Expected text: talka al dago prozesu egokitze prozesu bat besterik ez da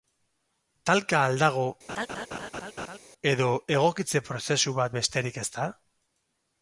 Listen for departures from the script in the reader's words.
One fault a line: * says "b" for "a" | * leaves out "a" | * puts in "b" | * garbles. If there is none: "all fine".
* says "edo" for "prozesu"